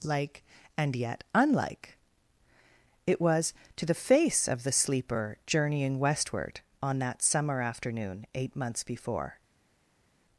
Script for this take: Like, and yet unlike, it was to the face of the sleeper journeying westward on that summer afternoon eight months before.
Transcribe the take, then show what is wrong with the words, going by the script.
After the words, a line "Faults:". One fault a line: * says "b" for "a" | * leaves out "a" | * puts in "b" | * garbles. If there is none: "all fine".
Like, and yet unlike, it was to the face of the sleeper journeying westward on that summer afternoon eight months before.
Faults:
all fine